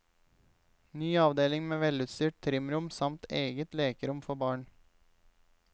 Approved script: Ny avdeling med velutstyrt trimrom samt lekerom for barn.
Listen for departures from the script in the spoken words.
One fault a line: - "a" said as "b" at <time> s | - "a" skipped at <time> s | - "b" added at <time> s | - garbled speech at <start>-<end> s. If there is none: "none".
- "eget" added at 3.3 s